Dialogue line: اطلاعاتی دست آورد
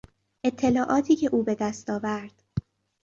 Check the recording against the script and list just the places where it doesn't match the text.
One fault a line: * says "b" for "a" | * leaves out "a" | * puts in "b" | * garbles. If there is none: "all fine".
* puts in "که او به"